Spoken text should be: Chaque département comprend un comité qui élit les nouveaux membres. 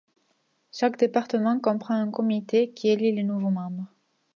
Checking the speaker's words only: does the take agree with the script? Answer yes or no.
yes